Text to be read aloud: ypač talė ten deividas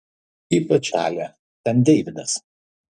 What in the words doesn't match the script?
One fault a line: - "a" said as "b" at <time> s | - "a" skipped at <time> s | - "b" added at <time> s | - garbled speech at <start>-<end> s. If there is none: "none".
none